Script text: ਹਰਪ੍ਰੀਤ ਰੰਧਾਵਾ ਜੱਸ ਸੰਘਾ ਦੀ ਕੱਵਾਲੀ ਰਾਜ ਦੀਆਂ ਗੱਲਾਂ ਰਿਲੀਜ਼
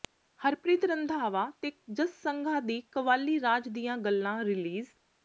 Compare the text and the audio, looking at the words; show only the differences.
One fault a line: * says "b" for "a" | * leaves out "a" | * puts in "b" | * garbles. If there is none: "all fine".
* puts in "ਤੇ"